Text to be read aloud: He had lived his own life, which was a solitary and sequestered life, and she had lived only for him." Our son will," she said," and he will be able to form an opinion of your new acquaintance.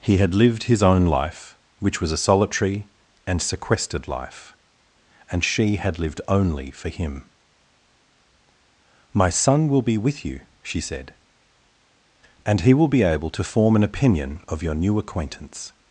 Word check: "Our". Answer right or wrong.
wrong